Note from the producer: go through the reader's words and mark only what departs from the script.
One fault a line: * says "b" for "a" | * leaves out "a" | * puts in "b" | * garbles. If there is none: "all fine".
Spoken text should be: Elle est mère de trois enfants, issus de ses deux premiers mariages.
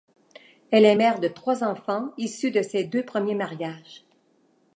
all fine